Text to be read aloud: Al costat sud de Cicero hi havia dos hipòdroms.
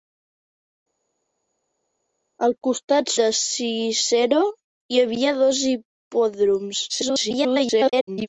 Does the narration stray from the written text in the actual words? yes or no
yes